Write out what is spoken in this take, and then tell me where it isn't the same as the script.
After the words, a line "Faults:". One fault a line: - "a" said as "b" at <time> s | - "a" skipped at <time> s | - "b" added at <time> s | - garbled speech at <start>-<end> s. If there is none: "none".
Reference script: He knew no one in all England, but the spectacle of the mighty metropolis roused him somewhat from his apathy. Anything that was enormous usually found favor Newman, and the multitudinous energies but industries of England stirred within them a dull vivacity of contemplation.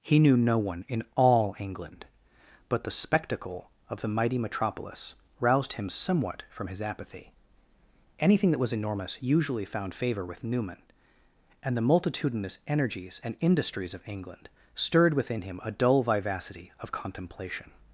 He knew no one in all England, but the spectacle of the mighty metropolis roused him somewhat from his apathy. Anything that was enormous usually found favor with Newman, and the multitudinous energies and industries of England stirred within him a dull vivacity of contemplation.
Faults:
- "with" added at 10.2 s
- "but" said as "and" at 13.2 s
- "them" said as "him" at 15.4 s